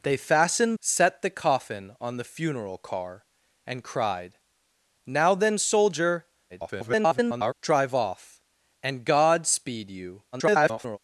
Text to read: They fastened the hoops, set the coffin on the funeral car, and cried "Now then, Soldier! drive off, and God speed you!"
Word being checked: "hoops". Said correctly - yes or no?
no